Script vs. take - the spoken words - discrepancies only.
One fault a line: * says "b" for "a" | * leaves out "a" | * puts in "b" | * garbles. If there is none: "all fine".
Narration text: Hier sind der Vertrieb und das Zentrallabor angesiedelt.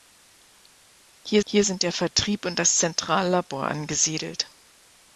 * puts in "hier"